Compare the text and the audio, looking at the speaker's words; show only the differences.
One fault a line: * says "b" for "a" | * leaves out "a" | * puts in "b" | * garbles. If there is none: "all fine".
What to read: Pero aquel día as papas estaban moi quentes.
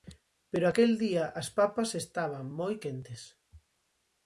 all fine